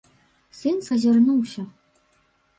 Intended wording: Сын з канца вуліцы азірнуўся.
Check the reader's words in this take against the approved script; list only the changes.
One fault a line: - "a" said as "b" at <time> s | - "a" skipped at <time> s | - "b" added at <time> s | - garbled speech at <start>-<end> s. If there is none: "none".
- "канца вуліцы" skipped at 0.9 s